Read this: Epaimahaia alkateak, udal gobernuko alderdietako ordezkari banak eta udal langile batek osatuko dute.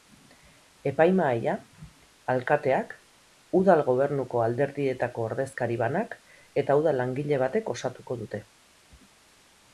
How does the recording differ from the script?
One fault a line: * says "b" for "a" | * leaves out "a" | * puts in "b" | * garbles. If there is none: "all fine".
all fine